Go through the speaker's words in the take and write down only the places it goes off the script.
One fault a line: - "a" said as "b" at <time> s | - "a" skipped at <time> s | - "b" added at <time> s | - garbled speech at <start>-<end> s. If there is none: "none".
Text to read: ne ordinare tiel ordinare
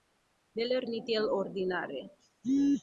- "ordinare" said as "lerni" at 0.7 s